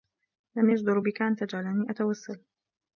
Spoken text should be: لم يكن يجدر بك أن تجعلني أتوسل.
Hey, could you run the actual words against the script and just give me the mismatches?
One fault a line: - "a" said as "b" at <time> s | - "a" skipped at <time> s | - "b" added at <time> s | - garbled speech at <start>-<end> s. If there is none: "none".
- "يكن" skipped at 0.7 s